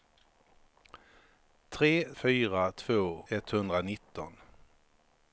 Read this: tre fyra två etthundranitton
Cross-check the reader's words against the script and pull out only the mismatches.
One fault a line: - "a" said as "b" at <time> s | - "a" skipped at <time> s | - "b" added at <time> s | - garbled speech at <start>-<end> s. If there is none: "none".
none